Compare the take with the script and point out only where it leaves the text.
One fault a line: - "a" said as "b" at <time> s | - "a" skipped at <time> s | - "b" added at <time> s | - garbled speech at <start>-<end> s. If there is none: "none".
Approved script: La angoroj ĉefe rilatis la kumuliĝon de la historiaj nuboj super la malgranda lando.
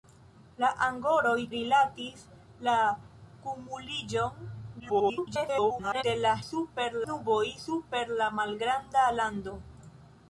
- "ĉefe" skipped at 1.3 s
- garbled speech at 4.8-6.0 s
- "historiaj" said as "super" at 6.5 s